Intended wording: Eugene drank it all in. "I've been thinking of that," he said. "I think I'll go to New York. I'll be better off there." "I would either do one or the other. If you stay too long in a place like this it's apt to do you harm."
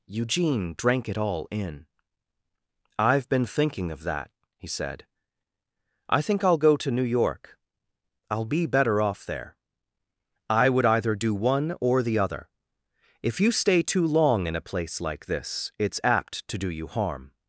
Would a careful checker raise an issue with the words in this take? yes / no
no